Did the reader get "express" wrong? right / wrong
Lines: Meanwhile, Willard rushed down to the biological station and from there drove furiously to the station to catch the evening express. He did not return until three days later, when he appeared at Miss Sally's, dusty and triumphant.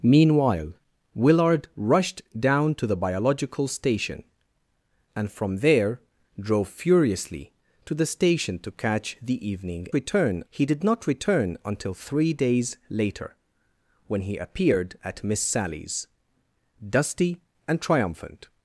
wrong